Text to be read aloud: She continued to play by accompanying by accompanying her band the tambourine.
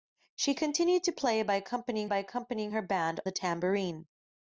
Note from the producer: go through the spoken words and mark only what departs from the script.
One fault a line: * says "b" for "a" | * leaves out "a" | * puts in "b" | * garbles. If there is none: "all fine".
all fine